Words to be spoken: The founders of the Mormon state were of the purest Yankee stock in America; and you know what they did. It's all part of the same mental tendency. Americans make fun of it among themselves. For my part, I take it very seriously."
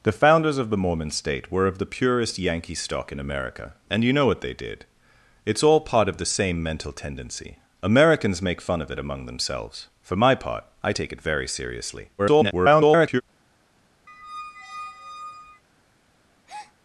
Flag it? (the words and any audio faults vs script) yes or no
yes